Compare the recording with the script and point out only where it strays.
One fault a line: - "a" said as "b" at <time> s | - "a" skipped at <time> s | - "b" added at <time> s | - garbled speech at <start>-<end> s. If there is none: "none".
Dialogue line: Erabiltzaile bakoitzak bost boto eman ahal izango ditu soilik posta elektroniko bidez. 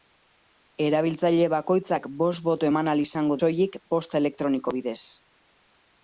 - "ditu" skipped at 3.4 s